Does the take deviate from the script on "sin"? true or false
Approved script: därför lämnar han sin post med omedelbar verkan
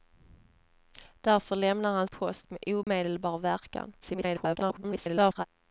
true